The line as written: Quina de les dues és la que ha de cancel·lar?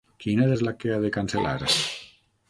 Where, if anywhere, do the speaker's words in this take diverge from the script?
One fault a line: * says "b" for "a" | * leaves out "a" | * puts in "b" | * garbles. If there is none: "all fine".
* leaves out "les dues"